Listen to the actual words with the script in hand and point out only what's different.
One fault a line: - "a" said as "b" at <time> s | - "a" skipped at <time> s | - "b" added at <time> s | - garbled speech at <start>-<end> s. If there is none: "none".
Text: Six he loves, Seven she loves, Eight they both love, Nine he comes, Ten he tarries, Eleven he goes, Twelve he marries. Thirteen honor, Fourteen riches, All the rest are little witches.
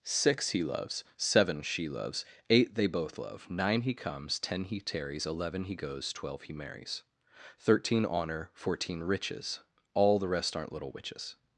- "are" said as "aren't" at 10.5 s